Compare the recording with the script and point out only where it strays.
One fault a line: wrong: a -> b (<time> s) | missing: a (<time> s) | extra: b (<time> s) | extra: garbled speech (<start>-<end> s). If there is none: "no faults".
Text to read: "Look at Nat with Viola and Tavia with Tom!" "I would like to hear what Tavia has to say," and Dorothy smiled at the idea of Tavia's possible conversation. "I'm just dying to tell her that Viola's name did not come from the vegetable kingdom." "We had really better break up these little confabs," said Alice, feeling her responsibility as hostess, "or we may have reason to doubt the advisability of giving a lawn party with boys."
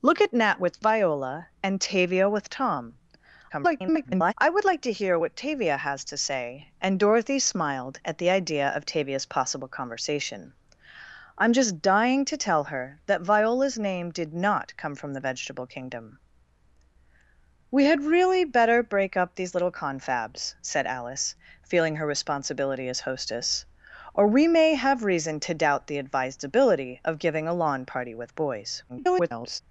extra: garbled speech (3.5-4.3 s)
extra: garbled speech (28.9-29.6 s)